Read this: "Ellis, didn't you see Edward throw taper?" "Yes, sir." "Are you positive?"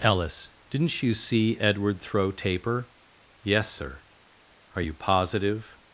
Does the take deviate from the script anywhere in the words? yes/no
no